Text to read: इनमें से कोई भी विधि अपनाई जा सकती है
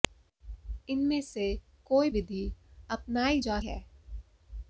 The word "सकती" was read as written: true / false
false